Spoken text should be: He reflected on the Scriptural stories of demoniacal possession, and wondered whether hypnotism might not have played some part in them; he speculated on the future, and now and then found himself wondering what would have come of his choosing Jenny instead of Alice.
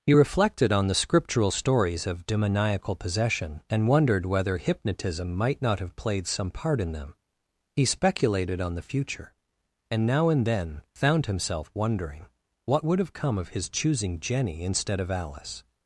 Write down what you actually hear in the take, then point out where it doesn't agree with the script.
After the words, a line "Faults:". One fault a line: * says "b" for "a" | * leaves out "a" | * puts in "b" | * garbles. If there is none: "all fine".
He reflected on the Scriptural stories of demoniacal possession, and wondered whether hypnotism might not have played some part in them; he speculated on the future, and now and then found himself wondering what would have come of his choosing Jenny instead of Alice.
Faults:
all fine